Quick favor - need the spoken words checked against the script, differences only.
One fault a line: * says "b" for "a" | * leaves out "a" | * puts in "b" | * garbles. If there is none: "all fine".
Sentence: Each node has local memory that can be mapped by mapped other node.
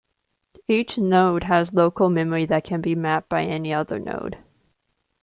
* says "any" for "mapped"